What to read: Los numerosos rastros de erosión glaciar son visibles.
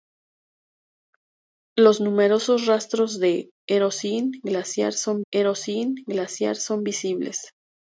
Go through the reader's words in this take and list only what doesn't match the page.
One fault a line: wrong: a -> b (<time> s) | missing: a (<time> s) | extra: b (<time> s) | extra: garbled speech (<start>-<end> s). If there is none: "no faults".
extra: erosión glaciar son (5.3 s)